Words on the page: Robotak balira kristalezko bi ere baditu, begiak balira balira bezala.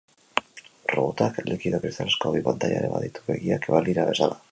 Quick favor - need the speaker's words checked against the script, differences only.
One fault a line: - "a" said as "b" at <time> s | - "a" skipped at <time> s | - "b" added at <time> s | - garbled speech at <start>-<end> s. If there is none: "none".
- "balira" said as "likido" at 1.5 s
- "pantaila" added at 2.5 s
- "balira" skipped at 4.1 s